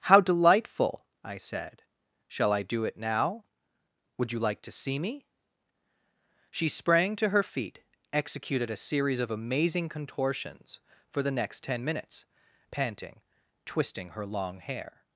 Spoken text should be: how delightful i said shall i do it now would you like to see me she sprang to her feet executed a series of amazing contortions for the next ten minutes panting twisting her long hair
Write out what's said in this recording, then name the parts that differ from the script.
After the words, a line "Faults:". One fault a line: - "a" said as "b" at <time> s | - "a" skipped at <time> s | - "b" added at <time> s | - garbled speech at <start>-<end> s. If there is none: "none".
how delightful i said shall i do it now would you like to see me she sprang to her feet executed a series of amazing contortions for the next ten minutes panting twisting her long hair
Faults:
none